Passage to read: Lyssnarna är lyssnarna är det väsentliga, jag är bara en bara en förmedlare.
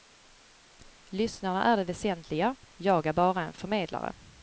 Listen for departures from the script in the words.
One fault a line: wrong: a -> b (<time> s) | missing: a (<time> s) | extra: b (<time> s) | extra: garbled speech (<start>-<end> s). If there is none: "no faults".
missing: lyssnarna är (1.8 s)
missing: bara en (3.5 s)